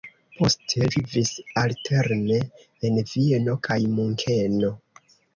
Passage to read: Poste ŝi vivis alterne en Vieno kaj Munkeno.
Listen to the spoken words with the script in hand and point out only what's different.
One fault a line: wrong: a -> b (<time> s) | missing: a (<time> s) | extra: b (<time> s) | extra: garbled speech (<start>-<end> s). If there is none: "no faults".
missing: ŝi (0.9 s)